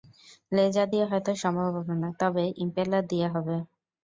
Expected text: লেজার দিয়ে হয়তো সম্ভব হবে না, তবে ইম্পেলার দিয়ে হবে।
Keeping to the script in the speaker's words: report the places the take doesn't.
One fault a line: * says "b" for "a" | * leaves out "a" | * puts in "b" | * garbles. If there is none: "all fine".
all fine